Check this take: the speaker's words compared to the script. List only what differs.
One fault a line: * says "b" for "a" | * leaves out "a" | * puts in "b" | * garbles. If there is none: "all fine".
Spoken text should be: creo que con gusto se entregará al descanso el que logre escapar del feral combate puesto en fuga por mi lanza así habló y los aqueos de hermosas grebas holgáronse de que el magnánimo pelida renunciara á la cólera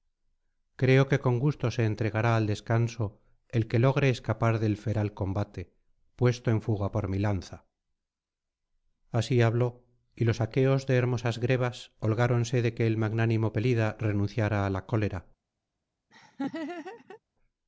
all fine